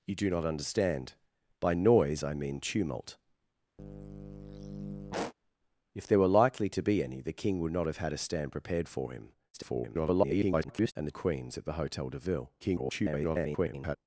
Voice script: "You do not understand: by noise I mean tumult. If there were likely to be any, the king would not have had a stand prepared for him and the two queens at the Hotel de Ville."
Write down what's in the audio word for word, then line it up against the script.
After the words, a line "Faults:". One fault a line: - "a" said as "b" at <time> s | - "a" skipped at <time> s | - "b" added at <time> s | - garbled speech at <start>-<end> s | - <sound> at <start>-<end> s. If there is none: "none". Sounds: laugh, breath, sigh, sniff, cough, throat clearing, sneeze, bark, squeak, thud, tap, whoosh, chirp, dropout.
"You do not understand: by noise I mean tumult. If there were likely to be any, the king would not have had a stand prepared for him [garbled] and the queens at the Hotel de Ville." [garbled]
Faults:
- sigh at 3.8-5.3 s
- garbled speech at 9.5-10.9 s
- "two" skipped at 11.2 s
- garbled speech at 12.6-14.0 s